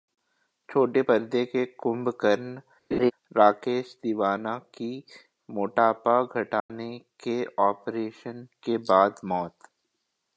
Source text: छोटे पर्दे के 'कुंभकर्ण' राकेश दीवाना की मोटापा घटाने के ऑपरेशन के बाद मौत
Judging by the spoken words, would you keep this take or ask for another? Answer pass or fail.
pass